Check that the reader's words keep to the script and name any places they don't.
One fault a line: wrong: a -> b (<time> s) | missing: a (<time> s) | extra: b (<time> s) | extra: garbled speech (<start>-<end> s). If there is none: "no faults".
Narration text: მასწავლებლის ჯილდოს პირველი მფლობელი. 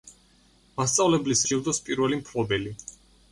no faults